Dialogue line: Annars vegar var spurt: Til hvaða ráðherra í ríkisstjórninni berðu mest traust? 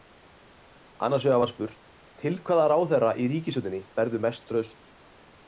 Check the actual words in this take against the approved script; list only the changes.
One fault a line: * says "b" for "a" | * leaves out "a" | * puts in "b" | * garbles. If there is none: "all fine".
all fine